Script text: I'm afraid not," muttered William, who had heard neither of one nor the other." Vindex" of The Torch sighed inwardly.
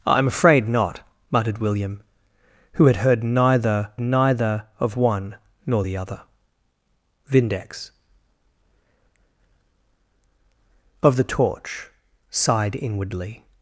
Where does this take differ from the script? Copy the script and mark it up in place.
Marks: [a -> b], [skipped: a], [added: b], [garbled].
I'm afraid not," muttered William, who had heard neither [added: neither] of one nor the other." Vindex" of The Torch sighed inwardly.